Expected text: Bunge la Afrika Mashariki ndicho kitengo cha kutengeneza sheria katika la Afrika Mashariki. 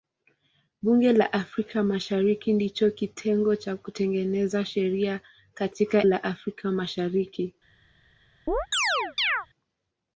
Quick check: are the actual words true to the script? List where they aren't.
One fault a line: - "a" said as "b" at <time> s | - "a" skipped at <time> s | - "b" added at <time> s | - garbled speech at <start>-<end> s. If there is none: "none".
none